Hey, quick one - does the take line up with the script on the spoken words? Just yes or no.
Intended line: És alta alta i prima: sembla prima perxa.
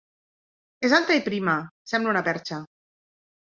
no